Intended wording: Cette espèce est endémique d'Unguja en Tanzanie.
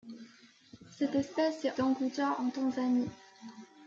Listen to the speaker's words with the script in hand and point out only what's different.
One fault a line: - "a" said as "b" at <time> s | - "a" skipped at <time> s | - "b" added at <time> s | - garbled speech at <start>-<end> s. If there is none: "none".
- "endémique" skipped at 1.8 s